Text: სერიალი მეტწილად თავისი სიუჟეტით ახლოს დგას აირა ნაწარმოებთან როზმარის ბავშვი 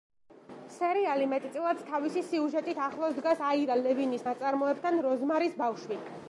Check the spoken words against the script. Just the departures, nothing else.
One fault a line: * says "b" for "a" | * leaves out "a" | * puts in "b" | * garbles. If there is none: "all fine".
* puts in "ლევინის"